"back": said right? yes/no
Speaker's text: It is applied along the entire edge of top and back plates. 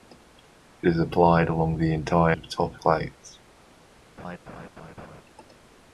no